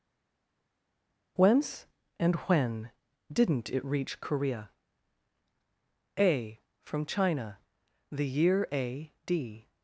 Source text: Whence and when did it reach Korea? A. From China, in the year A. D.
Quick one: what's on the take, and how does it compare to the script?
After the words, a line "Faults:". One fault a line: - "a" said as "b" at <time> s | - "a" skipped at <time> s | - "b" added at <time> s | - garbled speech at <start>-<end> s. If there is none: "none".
Whence and when didn't it reach Korea? A. From China, the year A. D.
Faults:
- "did" said as "didn't" at 3.3 s
- "in" skipped at 7.6 s